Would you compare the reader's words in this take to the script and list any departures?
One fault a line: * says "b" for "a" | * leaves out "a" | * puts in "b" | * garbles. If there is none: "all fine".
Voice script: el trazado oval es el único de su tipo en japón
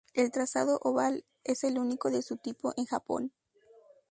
all fine